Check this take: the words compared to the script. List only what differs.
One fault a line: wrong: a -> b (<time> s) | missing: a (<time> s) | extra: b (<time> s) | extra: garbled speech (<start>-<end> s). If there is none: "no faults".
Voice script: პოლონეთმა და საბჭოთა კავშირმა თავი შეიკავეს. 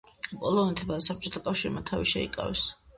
no faults